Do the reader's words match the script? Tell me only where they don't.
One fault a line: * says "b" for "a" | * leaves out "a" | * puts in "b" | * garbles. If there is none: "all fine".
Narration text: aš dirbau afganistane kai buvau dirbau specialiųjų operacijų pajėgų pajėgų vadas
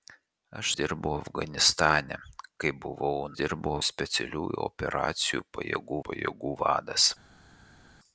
all fine